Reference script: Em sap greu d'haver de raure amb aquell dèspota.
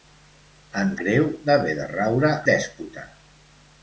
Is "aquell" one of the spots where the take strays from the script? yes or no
yes